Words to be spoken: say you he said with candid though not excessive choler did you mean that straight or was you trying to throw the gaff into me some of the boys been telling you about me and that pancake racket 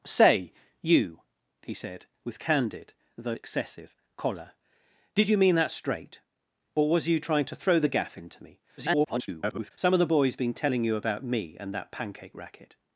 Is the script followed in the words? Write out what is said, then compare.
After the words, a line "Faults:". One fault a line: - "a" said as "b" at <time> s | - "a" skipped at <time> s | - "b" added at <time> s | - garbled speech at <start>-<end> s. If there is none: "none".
say you he said with candid though excessive choler did you mean that straight or was you trying to throw the gaff into me [garbled] some of the boys been telling you about me and that pancake racket
Faults:
- "not" skipped at 3.4 s
- garbled speech at 8.8-9.7 s